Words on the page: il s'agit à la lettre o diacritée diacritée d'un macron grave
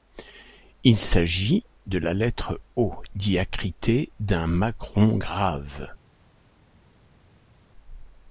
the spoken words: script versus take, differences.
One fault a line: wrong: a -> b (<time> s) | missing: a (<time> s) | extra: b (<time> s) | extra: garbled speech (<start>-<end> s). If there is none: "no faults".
wrong: à -> de (1.9 s)
missing: diacritée (4.1 s)